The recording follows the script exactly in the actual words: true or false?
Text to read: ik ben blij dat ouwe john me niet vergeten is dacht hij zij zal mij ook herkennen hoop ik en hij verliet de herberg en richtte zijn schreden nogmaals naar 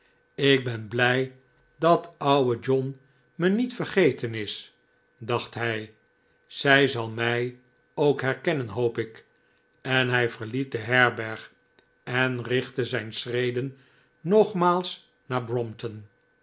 true